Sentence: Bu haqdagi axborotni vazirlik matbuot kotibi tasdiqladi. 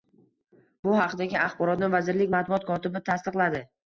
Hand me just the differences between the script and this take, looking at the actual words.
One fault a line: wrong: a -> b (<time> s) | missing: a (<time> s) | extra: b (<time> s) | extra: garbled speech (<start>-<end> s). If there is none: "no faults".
no faults